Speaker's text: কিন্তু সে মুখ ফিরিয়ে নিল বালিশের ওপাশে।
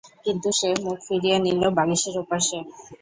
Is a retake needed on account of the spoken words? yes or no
no